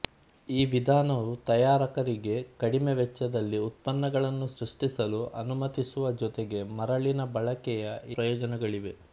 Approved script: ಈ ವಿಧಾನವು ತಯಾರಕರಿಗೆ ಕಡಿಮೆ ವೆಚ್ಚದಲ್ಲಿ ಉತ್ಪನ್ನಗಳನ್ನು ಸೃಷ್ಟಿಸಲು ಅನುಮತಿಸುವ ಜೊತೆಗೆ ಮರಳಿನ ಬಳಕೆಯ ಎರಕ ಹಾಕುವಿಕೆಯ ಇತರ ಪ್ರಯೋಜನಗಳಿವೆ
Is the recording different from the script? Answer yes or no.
yes